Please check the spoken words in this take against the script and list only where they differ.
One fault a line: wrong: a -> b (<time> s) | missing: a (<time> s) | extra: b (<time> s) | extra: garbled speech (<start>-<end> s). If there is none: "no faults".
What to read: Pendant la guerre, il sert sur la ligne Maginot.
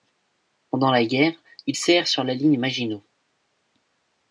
no faults